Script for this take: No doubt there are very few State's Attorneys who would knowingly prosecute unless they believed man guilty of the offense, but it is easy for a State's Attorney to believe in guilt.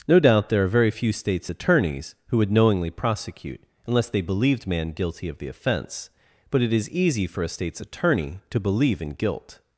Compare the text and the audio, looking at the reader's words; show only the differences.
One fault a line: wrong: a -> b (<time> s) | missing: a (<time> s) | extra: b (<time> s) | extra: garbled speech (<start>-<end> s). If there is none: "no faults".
no faults